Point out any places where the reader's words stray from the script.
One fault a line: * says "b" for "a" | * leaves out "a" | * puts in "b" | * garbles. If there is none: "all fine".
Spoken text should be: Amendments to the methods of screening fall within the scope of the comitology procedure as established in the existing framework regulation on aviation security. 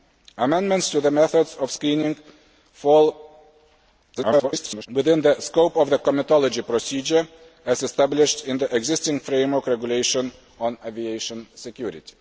* garbles